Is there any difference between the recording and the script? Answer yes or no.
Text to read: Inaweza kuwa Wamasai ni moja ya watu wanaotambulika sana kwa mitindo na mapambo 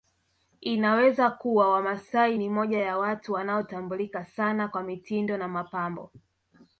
no